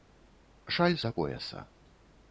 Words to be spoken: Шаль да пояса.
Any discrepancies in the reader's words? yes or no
no